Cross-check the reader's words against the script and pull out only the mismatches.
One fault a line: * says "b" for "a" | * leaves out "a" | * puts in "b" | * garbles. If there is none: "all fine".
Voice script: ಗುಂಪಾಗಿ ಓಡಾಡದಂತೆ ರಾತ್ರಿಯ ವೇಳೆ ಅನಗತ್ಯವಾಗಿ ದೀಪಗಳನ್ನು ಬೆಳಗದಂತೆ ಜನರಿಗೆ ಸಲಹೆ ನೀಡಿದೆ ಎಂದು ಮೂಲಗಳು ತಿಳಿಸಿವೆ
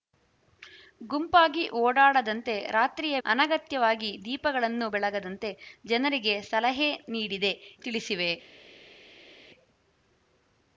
* leaves out "ವೇಳೆ"
* leaves out "ಎಂದು ಮೂಲಗಳು"